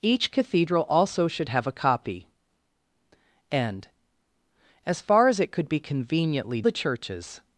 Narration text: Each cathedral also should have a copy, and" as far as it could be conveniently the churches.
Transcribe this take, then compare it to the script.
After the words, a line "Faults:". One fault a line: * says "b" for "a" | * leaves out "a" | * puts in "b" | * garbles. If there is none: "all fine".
Each cathedral also should have a copy, and" as far as it could be conveniently the churches.
Faults:
all fine